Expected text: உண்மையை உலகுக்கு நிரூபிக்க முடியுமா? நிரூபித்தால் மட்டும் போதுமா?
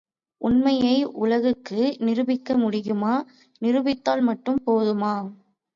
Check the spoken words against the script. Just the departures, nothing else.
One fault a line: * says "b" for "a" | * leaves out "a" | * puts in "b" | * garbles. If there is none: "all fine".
all fine